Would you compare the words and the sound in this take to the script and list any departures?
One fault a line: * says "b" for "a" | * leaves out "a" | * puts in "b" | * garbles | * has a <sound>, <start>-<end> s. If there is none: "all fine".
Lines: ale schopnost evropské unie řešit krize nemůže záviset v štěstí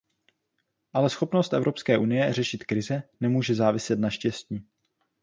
* says "na" for "v"